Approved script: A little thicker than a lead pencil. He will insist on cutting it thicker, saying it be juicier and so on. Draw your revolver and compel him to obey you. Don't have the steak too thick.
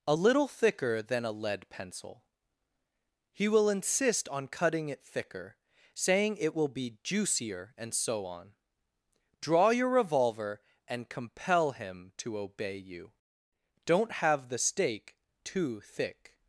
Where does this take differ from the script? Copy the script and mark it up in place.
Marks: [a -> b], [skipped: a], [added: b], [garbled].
A little thicker than a lead pencil. He will insist on cutting it thicker, saying it [added: will] be juicier and so on. Draw your revolver and compel him to obey you. Don't have the steak too thick.